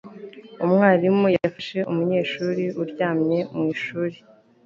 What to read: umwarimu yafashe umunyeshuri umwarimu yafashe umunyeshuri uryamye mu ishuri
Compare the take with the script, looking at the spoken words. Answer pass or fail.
fail